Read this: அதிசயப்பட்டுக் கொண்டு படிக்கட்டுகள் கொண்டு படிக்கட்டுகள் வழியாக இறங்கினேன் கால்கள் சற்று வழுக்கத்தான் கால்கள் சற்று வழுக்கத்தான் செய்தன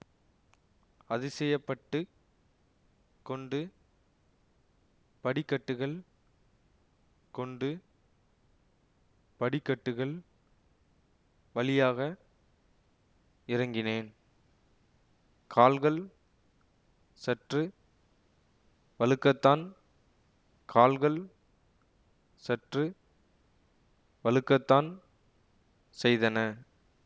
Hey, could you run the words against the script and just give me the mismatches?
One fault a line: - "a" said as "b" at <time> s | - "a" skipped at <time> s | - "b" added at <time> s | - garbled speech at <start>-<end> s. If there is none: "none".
none